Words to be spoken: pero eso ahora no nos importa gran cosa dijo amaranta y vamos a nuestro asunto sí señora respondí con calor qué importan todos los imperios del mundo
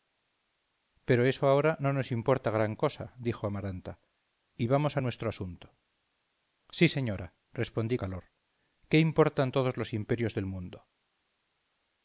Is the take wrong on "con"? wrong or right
wrong